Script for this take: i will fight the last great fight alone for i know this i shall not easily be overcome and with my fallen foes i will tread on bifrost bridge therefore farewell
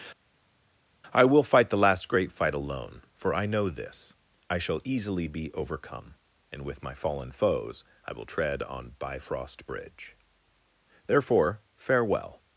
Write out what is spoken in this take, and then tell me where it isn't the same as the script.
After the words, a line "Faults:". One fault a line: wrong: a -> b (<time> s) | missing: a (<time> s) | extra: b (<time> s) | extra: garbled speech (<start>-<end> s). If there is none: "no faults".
i will fight the last great fight alone for i know this i shall easily be overcome and with my fallen foes i will tread on bifrost bridge therefore farewell
Faults:
missing: not (4.8 s)